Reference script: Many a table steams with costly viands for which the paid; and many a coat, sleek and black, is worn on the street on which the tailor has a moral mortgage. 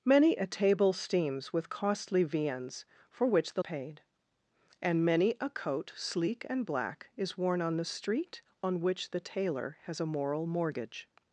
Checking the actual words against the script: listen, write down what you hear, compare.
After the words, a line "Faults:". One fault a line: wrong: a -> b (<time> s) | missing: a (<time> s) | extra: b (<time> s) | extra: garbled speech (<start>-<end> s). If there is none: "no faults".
Many a table steams with costly viands for which the paid; and many a coat, sleek and black, is worn on the street on which the tailor has a moral mortgage.
Faults:
no faults